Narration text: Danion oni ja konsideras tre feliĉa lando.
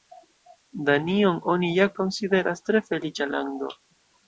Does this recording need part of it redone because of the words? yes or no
no